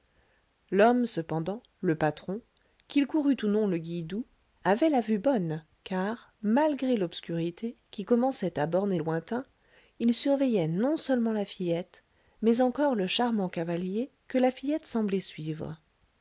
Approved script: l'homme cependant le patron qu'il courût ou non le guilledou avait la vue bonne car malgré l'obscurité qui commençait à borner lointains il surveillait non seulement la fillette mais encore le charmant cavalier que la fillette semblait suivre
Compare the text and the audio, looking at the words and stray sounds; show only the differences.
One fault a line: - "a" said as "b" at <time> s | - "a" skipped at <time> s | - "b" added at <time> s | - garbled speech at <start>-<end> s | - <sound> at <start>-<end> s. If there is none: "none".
none